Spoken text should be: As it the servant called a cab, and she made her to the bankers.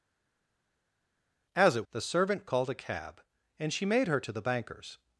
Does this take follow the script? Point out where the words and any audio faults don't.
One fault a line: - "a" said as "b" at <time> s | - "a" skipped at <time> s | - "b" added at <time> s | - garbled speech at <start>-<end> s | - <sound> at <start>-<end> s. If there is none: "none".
none